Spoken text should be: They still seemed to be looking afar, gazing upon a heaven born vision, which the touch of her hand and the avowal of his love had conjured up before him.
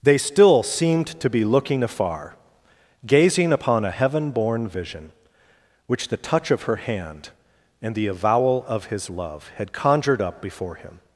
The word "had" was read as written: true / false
true